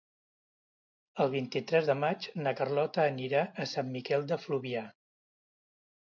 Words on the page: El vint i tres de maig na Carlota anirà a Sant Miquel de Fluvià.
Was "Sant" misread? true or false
false